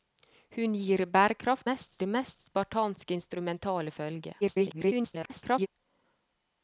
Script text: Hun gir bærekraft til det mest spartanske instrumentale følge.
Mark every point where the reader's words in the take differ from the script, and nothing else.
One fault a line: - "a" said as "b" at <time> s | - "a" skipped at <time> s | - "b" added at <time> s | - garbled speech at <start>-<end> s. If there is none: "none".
- "til" said as "mest" at 1.7 s
- garbled speech at 4.4-5.7 s